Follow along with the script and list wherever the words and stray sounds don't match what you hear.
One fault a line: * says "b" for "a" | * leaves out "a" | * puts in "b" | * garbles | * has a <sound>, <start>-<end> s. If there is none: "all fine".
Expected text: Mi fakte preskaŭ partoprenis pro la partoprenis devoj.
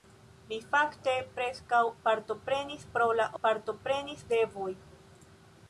all fine